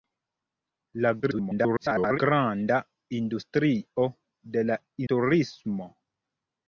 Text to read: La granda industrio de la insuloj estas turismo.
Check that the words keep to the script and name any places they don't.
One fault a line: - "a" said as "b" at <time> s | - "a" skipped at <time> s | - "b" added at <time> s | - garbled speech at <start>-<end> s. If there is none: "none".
- garbled speech at 1.2-2.2 s
- "insuloj estas" skipped at 4.8 s